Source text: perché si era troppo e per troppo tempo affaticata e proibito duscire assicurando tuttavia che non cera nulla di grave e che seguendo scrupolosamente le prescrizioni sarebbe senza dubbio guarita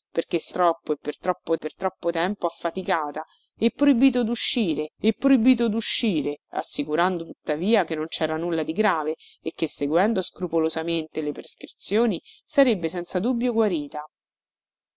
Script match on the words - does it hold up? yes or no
no